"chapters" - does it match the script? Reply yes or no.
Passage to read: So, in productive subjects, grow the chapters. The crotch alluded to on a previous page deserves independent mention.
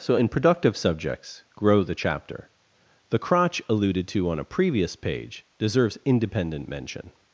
no